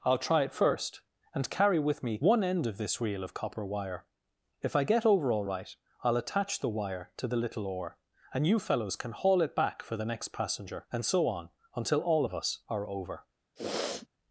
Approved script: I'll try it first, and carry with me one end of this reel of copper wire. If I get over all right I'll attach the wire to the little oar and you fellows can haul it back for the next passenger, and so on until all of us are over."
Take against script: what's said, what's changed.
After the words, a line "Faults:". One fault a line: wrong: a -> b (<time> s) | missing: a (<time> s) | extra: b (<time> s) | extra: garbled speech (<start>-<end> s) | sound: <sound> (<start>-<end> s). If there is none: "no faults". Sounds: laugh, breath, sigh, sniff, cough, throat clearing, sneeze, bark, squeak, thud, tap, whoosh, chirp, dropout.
I'll try it first, and carry with me one end of this reel of copper wire. If I get over all right I'll attach the wire to the little oar and you fellows can haul it back for the next passenger, and so on until all of us are over."
Faults:
sound: sniff (13.6-14.1 s)